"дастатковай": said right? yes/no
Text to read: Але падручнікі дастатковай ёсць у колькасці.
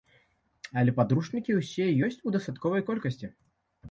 no